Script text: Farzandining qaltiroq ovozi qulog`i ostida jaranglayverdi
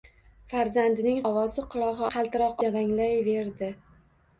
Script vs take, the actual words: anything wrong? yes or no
yes